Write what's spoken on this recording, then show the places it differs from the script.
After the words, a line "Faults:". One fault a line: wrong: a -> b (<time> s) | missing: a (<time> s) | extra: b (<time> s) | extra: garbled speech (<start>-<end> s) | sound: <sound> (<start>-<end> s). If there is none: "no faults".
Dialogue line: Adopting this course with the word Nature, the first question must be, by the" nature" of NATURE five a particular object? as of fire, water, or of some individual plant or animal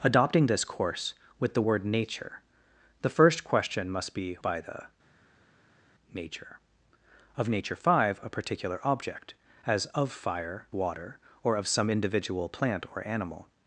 Adopting this course with the word Nature, the first question must be, by the" nature" of NATURE five a particular object? as of fire, water, or of some individual plant or animal
Faults:
no faults